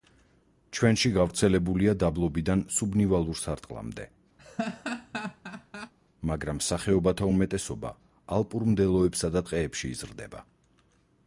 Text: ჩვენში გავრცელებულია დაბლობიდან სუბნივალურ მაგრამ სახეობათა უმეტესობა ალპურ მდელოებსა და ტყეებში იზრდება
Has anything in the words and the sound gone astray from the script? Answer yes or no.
yes